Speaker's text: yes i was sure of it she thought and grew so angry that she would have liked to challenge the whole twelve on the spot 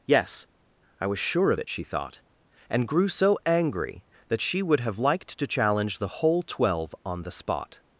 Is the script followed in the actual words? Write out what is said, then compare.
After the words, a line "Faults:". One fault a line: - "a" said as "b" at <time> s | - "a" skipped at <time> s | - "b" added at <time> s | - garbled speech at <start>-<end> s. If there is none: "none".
yes i was sure of it she thought and grew so angry that she would have liked to challenge the whole twelve on the spot
Faults:
none